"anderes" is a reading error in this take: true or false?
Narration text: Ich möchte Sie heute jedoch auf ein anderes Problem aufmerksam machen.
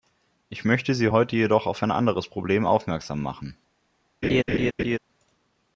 false